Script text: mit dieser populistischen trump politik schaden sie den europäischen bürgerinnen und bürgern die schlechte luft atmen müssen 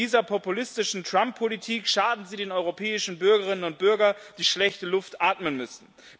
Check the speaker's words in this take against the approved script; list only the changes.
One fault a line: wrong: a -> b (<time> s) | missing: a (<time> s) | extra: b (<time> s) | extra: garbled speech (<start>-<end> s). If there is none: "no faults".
no faults